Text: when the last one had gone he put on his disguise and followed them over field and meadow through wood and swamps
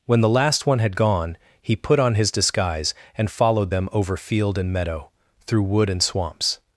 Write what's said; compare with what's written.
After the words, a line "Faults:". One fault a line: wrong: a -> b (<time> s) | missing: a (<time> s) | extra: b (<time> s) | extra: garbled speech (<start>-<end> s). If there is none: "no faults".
when the last one had gone he put on his disguise and followed them over field and meadow through wood and swamps
Faults:
no faults